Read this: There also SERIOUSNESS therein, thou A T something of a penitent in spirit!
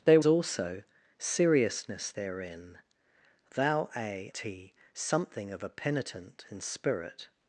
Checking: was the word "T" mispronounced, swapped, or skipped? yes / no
no